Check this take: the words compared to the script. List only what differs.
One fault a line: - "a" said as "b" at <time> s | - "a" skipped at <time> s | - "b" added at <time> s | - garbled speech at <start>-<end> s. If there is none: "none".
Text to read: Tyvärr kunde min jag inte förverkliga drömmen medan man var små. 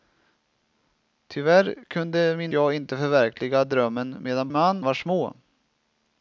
none